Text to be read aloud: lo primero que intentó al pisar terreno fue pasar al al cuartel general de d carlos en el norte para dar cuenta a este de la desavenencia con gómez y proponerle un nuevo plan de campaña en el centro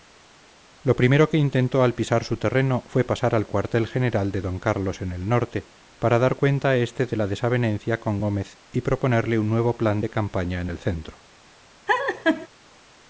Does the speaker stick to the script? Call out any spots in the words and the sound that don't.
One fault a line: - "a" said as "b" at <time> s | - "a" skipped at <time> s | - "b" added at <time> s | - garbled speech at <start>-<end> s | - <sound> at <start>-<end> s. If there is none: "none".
- "su" added at 2.2 s
- "al" skipped at 3.5 s
- laugh at 11.9-12.5 s